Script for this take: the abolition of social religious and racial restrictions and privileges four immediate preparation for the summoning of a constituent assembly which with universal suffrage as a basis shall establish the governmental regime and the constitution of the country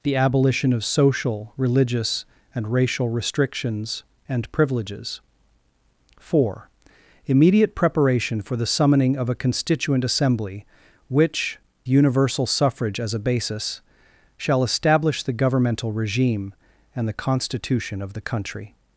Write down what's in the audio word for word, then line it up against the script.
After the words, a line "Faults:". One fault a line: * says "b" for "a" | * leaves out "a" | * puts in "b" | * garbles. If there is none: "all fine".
the abolition of social religious and racial restrictions and privileges four immediate preparation for the summoning of a constituent assembly which universal suffrage as a basis shall establish the governmental regime and the constitution of the country
Faults:
* leaves out "with"